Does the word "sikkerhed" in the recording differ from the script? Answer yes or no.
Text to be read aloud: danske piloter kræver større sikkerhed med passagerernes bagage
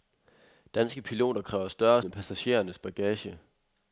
yes